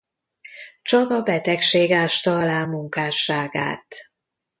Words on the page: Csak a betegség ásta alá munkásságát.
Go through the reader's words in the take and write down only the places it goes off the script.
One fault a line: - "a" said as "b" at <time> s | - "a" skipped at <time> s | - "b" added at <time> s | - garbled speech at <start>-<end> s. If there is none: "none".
none